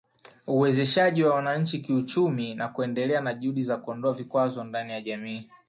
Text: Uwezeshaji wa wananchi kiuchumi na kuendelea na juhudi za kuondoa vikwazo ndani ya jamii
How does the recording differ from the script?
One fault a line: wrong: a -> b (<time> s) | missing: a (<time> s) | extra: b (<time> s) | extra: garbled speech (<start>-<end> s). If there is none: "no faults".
no faults